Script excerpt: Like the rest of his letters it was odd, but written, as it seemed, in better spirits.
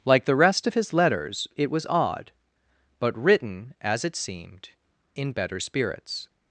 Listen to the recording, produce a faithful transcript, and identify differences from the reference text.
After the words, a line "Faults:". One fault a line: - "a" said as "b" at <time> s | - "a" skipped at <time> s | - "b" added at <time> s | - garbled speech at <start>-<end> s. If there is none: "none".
Like the rest of his letters it was odd, but written, as it seemed, in better spirits.
Faults:
none